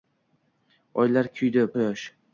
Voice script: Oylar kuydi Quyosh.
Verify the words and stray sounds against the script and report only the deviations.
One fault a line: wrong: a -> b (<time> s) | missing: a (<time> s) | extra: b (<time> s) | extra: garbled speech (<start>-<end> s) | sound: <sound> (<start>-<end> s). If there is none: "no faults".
no faults